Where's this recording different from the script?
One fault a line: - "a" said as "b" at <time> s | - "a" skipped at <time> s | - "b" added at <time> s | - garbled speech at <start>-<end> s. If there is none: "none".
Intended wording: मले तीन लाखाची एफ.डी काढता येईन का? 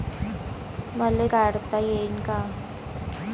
- "तीन लाखाची एफ.डी" skipped at 1.3 s